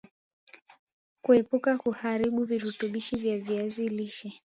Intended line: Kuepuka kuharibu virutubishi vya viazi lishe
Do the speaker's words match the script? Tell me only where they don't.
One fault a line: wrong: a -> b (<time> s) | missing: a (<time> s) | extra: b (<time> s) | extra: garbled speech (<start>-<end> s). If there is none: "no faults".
no faults